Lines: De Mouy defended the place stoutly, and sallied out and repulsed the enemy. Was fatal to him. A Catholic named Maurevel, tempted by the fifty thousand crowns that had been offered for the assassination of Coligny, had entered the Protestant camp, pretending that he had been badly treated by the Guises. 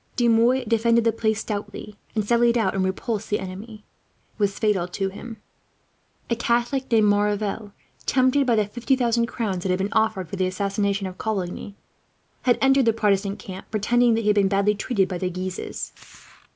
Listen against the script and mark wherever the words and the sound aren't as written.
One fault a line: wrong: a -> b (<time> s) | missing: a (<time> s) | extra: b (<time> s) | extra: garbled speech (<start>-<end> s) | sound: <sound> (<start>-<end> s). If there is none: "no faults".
no faults